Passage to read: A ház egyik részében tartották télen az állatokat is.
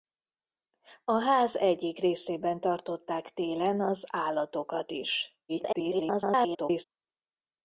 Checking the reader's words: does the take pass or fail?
fail